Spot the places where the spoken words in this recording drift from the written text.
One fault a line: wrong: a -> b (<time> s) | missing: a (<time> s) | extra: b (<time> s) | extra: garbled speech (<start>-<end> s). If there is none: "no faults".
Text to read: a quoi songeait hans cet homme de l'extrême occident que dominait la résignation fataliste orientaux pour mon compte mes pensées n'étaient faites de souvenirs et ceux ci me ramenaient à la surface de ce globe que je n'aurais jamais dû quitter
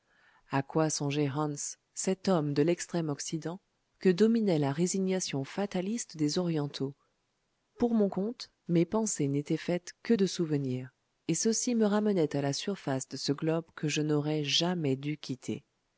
extra: des (6.2 s)
extra: que (10.0 s)